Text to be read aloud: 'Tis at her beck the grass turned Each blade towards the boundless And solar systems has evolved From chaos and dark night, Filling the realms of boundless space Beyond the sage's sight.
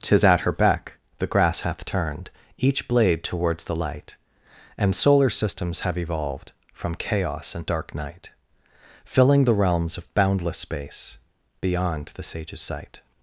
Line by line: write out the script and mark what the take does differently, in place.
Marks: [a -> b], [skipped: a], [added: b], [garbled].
'Tis at her beck the grass [added: hath] turned Each blade towards the [boundless -> light] And solar systems [has -> have] evolved From chaos and dark night, Filling the realms of boundless space Beyond the sage's sight.